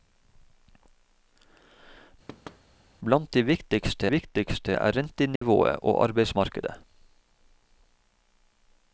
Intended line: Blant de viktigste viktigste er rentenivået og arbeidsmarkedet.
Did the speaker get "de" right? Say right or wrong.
right